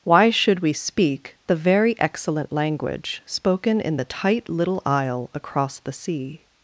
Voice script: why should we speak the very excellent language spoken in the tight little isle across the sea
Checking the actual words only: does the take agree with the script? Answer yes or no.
yes